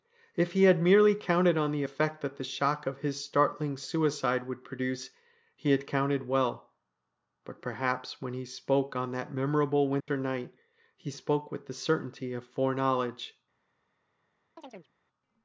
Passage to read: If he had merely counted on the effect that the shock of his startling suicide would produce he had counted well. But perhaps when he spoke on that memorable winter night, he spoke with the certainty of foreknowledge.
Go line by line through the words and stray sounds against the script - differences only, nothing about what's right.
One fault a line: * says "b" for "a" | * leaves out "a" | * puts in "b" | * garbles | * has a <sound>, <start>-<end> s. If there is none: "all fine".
* has a dropout, 10.0-10.1 s
* has a chirp, 14.6-14.9 s